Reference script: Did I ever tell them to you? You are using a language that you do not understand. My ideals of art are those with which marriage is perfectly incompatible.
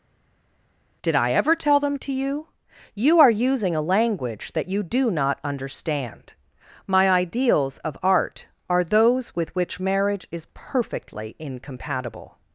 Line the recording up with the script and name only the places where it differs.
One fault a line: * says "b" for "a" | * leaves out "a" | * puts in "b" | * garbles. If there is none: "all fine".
all fine